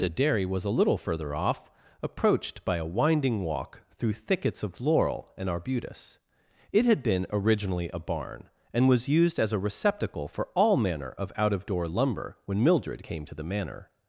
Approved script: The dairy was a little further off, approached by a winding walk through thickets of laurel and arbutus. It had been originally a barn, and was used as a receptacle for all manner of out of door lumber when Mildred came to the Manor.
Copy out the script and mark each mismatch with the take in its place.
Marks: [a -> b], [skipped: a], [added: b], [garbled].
The dairy was a little further off, approached by a winding walk through thickets of laurel and arbutus. It had been originally a barn, and was used as a receptacle for all manner of out of door lumber when Mildred came to the Manor.